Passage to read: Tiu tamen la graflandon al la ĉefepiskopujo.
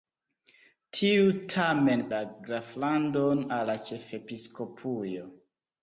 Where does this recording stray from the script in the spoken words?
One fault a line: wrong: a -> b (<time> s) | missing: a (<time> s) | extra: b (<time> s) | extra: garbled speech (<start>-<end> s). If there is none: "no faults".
no faults